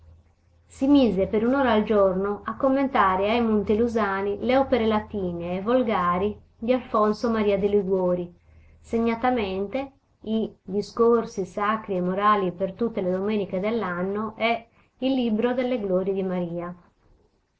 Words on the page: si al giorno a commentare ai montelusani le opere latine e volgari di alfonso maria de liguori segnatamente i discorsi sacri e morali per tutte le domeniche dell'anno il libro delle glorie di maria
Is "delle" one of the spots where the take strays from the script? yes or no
no